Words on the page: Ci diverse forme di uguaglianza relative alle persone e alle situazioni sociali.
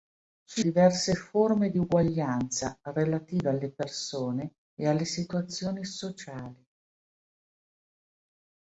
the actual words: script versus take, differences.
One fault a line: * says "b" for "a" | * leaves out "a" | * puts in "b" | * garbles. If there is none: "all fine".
all fine